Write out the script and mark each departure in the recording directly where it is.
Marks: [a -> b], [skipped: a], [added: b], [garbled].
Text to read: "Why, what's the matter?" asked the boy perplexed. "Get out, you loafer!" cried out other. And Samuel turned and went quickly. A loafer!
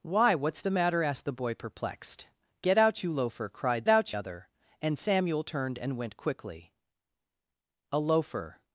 "Why, what's the matter?" asked the boy perplexed. "Get out, you loafer!" cried out other. And Samuel turned and went quickly. A loafer!